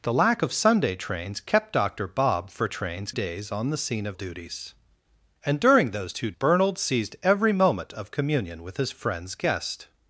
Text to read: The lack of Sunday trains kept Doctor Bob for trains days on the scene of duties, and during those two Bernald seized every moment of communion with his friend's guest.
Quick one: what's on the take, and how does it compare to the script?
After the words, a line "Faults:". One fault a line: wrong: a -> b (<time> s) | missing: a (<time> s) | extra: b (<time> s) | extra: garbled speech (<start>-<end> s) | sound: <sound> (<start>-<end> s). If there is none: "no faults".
The lack of Sunday trains kept Doctor Bob for trains days on the scene of duties, and during those two Bernald seized every moment of communion with his friend's guest.
Faults:
no faults